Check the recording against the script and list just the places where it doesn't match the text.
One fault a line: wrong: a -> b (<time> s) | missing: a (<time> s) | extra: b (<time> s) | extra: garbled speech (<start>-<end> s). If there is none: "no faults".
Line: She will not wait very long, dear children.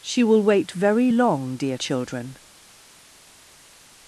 missing: not (0.4 s)